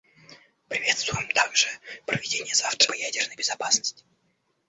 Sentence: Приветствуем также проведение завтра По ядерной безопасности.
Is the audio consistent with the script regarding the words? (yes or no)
yes